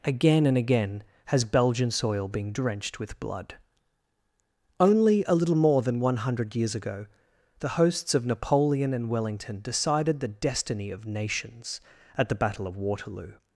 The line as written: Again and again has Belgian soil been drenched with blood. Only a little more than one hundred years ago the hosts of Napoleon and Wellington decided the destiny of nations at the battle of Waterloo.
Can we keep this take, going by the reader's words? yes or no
yes